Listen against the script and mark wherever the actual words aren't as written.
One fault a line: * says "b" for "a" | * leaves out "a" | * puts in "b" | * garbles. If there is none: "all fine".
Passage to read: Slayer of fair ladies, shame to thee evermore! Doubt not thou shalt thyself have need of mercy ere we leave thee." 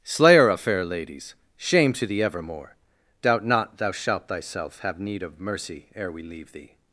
all fine